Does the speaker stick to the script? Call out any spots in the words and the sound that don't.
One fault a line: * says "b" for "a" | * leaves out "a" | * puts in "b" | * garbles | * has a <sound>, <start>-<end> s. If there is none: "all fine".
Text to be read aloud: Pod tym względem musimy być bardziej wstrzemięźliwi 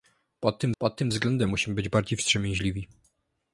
* puts in "pod tym"